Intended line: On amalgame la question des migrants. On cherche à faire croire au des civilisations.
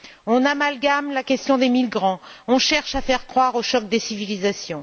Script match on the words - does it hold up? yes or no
no